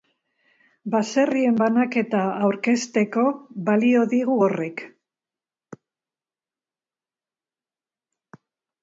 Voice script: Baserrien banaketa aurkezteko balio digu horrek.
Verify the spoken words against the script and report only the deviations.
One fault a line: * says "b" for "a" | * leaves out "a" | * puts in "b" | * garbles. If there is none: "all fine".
all fine